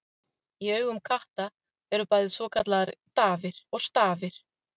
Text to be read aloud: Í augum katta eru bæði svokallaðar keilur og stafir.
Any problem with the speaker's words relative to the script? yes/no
yes